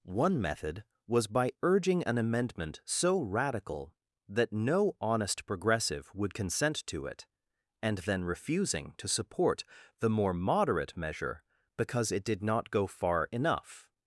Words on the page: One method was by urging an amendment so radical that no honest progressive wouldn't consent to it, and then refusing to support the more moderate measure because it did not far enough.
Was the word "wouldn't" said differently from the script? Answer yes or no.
yes